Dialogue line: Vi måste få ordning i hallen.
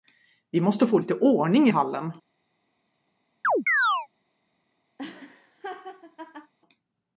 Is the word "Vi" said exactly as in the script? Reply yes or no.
yes